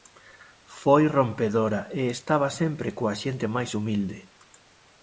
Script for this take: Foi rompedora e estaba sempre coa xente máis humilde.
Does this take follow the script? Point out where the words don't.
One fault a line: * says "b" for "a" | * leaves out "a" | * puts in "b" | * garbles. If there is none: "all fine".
all fine